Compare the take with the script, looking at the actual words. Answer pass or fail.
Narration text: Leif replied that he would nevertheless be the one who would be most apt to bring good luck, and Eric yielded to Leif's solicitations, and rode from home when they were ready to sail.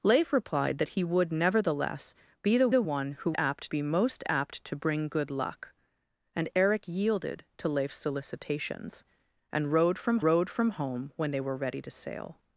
fail